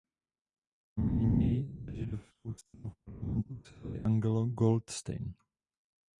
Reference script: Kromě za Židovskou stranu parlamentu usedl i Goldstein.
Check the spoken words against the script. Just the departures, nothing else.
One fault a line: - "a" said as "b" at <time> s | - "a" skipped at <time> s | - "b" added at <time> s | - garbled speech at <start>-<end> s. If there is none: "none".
- "něj" added at 1.3 s
- "v" added at 2.9 s
- "Angelo" added at 4.0 s